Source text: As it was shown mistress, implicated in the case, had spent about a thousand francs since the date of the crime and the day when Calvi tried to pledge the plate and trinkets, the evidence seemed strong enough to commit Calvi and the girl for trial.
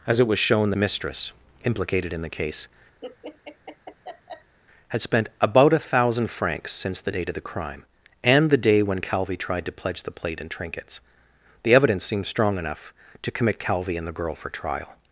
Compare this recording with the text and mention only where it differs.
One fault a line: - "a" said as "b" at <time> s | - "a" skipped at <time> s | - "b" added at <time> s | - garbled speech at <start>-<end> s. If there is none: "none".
none